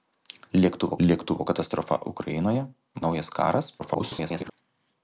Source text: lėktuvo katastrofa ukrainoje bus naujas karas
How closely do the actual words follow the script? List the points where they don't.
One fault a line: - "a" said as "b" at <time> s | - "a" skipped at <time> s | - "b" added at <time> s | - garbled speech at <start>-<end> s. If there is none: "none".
- "lėktuvo" added at 1.1 s
- "bus" skipped at 2.6 s
- garbled speech at 3.8-4.5 s